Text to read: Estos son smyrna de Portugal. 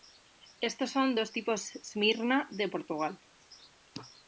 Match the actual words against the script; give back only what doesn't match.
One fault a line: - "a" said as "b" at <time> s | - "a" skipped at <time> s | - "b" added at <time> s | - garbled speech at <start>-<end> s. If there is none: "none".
- "dos tipos" added at 1.1 s